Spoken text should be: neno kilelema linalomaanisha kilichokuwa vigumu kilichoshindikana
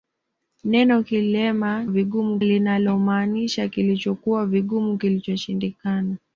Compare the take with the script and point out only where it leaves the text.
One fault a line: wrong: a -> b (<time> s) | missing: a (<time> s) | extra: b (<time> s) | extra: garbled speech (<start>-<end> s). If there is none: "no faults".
wrong: kilelema -> vigumu (1.9 s)